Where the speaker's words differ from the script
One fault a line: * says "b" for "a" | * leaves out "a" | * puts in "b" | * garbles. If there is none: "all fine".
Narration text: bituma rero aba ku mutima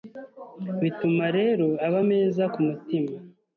* puts in "meza"